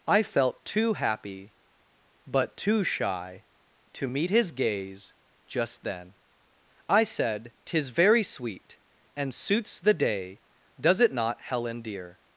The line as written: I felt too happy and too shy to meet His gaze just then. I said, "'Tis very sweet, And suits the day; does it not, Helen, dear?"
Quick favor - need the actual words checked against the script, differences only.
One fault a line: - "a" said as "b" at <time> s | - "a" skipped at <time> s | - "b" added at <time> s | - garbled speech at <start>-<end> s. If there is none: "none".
- "and" said as "but" at 2.3 s